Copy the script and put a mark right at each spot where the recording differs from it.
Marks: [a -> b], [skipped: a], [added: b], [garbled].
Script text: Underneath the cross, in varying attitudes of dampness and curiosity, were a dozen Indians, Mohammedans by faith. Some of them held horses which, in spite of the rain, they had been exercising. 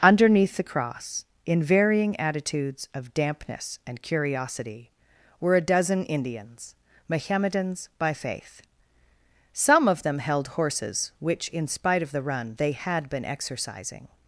Underneath the cross, in varying attitudes of dampness and curiosity, were a dozen Indians, Mohammedans by faith. Some of them held horses which, in spite of the [rain, -> run] they had been exercising.